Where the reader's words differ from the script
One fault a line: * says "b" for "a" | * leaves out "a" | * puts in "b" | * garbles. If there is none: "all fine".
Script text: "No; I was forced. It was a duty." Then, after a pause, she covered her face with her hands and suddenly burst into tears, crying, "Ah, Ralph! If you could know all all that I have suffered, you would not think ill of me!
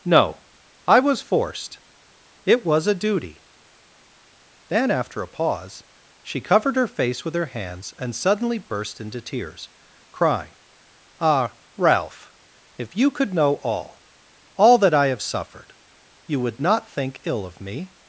all fine